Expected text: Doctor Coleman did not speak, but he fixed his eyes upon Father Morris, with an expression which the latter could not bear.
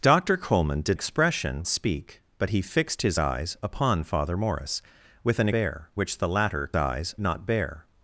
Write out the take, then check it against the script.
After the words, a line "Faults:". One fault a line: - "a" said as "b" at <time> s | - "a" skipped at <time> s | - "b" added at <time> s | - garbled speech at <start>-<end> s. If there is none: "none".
Doctor Coleman did expression speak, but he fixed his eyes upon Father Morris, with an bear which the latter eyes not bear.
Faults:
- "not" said as "expression" at 0.9 s
- "expression" said as "bear" at 5.5 s
- "could" said as "eyes" at 6.7 s